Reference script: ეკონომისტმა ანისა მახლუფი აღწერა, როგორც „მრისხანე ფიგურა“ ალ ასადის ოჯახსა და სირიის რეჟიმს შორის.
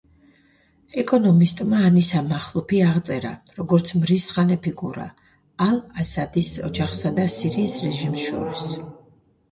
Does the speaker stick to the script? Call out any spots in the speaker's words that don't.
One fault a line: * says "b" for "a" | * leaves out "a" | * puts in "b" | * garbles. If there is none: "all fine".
all fine